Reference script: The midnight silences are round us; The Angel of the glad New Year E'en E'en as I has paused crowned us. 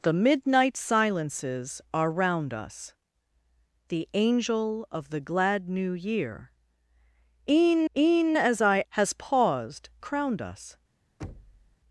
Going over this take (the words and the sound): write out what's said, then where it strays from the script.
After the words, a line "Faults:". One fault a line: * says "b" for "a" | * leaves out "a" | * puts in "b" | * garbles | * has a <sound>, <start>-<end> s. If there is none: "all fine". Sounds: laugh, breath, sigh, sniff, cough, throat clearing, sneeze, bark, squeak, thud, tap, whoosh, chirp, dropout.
The midnight silences are round us; The Angel of the glad New Year E'en E'en as I has paused crowned us.
Faults:
* has a thud, 11.2-11.8 s